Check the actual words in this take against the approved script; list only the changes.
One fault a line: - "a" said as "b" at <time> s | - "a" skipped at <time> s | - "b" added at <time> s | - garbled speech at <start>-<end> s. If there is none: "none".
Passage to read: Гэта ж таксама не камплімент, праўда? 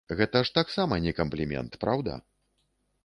none